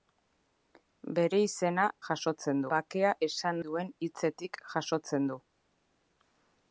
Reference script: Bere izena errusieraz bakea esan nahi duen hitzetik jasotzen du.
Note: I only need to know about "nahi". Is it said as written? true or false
false